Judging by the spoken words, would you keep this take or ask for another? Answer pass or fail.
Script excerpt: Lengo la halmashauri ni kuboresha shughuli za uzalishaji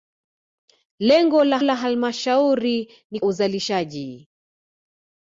fail